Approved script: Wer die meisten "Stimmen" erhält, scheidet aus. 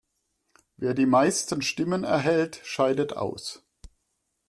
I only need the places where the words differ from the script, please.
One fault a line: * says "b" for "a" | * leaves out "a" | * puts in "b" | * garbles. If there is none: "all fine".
all fine